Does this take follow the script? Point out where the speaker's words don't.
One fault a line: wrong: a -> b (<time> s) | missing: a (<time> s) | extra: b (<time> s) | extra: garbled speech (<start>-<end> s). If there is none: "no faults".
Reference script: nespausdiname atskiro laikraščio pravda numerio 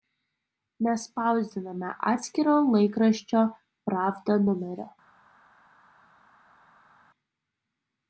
no faults